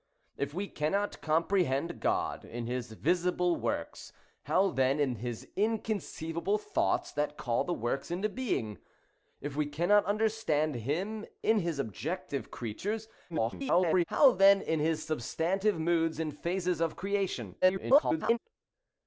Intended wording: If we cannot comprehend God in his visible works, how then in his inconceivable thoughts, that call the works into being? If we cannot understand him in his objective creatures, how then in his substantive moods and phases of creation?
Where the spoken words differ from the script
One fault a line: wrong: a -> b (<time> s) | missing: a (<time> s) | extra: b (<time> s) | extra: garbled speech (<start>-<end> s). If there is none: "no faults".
extra: garbled speech (13.3-14.0 s)
extra: garbled speech (17.6-18.4 s)